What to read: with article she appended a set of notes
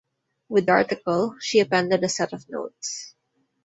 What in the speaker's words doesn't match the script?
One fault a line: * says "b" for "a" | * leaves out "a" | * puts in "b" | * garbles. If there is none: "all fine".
all fine